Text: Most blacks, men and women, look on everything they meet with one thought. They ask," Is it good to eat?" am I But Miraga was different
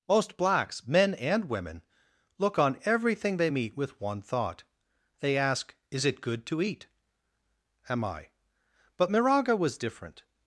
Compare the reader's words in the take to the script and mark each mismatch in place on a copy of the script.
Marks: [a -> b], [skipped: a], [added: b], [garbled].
Most blacks, men and women, look on everything they meet with one thought. They ask," Is it good to eat?" am I But Miraga was different